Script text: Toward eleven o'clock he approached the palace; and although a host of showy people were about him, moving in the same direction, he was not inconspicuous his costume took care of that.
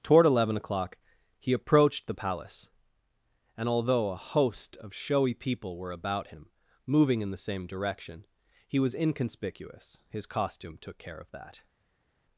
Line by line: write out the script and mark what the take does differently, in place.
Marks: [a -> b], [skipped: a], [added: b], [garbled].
Toward eleven o'clock he approached the palace; and although a host of showy people were about him, moving in the same direction, he was [skipped: not] inconspicuous his costume took care of that.